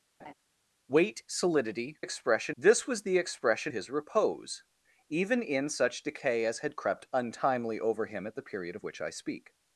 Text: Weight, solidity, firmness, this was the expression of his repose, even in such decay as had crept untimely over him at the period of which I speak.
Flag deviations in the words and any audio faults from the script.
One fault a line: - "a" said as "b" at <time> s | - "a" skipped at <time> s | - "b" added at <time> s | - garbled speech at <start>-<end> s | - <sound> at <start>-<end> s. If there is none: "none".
- laugh at 0.2-0.3 s
- "firmness" said as "expression" at 2.0 s
- "of" skipped at 3.7 s